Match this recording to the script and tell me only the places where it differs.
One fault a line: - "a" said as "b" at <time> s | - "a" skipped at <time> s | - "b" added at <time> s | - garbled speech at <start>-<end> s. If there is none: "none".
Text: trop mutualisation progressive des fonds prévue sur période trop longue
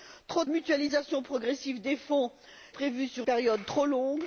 none